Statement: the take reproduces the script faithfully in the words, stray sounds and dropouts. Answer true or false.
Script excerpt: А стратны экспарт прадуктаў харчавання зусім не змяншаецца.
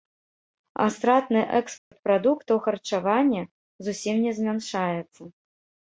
false